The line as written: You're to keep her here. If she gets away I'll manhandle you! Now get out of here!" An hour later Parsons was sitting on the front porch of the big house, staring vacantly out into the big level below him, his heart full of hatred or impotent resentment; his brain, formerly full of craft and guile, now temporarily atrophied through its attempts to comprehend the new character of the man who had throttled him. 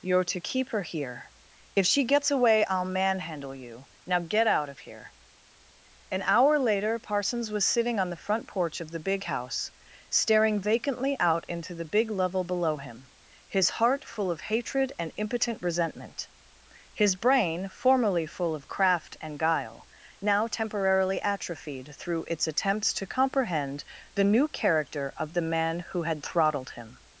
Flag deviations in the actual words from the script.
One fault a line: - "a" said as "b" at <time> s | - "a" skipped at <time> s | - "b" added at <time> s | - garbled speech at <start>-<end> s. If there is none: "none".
- "or" said as "and" at 15.0 s